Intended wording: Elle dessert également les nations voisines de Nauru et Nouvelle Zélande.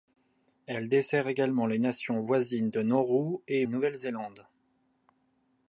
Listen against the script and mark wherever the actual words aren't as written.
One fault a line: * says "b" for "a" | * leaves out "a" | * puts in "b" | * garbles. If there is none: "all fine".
all fine